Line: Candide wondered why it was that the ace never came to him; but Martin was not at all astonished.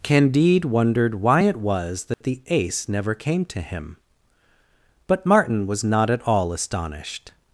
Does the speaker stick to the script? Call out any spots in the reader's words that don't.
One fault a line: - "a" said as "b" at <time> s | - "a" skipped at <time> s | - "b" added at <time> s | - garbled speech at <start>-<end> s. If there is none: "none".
none